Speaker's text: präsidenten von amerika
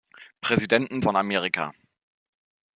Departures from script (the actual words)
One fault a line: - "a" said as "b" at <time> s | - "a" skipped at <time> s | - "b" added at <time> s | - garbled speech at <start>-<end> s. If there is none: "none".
none